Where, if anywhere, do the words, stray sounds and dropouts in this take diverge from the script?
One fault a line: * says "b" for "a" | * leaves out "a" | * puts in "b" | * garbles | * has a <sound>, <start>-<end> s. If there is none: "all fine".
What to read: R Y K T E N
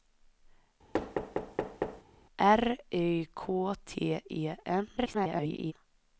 * has a thud, 0.9-2.0 s
* garbles